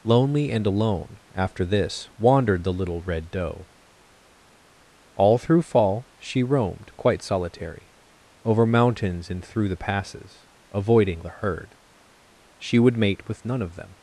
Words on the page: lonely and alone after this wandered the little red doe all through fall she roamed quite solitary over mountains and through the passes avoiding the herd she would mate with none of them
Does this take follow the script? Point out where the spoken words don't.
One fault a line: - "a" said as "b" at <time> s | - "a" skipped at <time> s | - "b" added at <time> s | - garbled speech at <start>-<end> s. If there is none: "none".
none